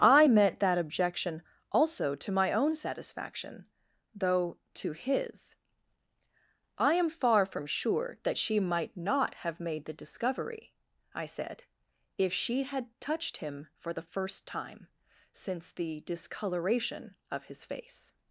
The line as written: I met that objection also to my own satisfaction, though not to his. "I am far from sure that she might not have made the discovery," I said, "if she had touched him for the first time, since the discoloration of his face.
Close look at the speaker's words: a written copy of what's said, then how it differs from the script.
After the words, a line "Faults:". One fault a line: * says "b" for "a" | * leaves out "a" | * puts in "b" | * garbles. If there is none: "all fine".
I met that objection also to my own satisfaction, though to his. "I am far from sure that she might not have made the discovery," I said, "if she had touched him for the first time, since the discoloration of his face.
Faults:
* leaves out "not"